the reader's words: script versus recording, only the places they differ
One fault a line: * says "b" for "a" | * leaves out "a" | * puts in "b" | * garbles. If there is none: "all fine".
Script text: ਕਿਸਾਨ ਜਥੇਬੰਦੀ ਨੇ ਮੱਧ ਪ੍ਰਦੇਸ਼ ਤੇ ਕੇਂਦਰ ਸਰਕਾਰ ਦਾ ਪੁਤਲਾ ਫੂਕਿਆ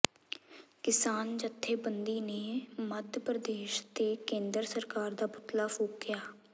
all fine